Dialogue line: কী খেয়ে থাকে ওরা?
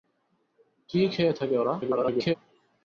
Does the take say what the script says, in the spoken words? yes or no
no